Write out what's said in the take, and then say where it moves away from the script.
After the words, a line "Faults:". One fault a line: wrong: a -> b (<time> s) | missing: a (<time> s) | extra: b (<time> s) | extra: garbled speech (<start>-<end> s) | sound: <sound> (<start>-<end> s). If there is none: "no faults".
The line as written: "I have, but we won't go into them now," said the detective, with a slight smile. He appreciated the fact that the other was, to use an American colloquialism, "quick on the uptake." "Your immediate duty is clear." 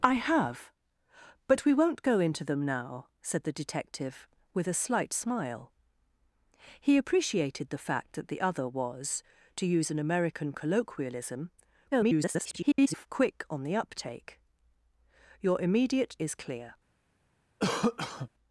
"I have, but we won't go into them now," said the detective, with a slight smile. He appreciated the fact that the other was, to use an American colloquialism, [garbled] "quick on the uptake." "Your immediate is clear."
Faults:
extra: garbled speech (11.9-13.1 s)
missing: duty (16.2 s)
sound: cough (17.6-18.3 s)